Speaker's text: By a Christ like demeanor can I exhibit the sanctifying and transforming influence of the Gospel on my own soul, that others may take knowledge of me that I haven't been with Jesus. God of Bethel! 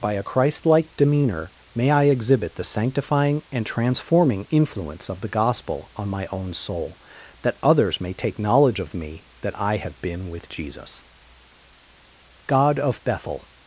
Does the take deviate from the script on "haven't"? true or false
true